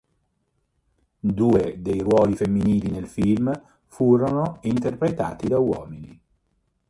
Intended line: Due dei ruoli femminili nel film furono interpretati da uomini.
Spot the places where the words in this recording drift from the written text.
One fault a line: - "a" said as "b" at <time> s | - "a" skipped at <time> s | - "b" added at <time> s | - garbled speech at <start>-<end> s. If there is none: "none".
none